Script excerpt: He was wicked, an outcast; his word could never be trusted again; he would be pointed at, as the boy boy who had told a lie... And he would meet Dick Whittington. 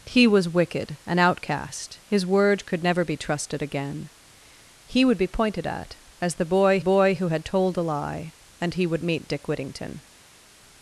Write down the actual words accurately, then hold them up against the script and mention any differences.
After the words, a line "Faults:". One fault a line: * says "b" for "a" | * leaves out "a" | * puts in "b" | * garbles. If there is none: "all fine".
He was wicked, an outcast; his word could never be trusted again; he would be pointed at, as the boy boy who had told a lie... And he would meet Dick Whittington.
Faults:
all fine